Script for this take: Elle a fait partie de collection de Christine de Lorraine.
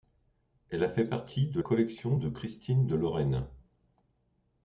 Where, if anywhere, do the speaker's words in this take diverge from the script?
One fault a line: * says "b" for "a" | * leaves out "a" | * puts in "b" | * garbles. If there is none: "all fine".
all fine